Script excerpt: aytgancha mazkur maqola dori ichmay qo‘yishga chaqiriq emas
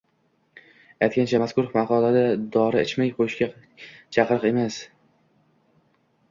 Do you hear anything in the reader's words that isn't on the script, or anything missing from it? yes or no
no